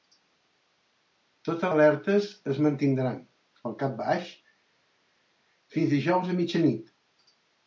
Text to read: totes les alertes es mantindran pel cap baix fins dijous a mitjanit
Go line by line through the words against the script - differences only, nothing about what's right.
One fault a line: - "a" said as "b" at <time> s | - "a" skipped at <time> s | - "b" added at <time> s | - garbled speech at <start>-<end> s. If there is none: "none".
- "les" skipped at 1.7 s